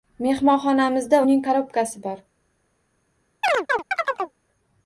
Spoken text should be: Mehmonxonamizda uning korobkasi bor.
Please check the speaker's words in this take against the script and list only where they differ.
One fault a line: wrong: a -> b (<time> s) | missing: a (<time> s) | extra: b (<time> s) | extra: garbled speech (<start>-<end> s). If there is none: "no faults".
no faults